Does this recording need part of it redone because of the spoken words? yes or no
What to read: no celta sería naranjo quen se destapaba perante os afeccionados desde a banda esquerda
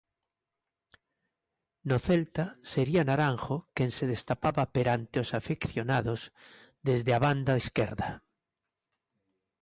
no